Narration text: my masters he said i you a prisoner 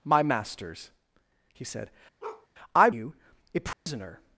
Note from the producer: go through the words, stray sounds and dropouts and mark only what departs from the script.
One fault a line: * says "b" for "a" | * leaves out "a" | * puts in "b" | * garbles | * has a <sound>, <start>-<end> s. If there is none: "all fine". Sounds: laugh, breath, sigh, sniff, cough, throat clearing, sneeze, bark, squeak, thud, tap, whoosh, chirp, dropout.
* has a bark, 2.2-2.5 s
* has a dropout, 3.7-3.9 s